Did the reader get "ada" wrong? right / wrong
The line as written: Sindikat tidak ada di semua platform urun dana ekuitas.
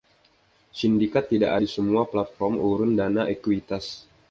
wrong